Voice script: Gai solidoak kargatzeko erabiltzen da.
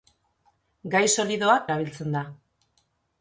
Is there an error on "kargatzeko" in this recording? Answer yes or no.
yes